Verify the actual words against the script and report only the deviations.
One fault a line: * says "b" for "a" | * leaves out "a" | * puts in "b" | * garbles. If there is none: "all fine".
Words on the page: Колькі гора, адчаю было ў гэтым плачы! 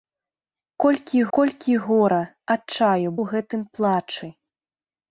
* puts in "колькі"
* leaves out "было"